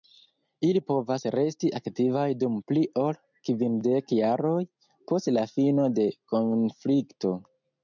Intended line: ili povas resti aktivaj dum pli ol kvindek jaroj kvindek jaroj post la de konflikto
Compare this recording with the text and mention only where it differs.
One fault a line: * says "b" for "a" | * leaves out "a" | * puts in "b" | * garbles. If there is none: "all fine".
* leaves out "kvindek jaroj"
* puts in "fino"